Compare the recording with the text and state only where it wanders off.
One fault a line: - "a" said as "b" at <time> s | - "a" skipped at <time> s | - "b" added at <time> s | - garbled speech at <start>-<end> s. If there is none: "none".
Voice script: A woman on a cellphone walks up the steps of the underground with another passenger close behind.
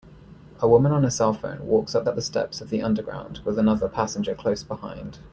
- "up" added at 2.0 s